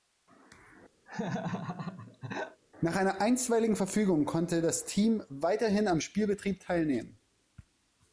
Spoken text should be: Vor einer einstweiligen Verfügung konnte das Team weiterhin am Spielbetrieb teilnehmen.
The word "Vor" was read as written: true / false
false